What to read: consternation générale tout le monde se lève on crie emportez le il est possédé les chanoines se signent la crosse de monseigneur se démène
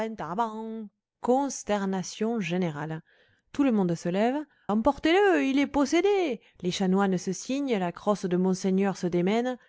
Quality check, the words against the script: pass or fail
fail